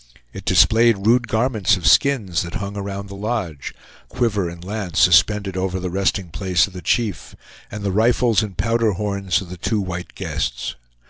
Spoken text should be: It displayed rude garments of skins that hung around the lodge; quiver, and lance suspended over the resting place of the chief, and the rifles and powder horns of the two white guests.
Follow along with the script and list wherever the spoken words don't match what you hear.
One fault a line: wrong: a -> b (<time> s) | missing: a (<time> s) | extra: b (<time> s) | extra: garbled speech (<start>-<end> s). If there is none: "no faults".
no faults